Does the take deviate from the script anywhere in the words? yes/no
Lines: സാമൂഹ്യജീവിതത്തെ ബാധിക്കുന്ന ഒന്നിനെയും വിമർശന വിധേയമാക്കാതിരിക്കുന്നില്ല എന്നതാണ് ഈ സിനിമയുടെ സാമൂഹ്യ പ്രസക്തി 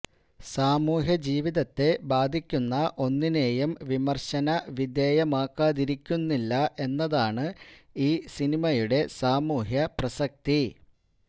no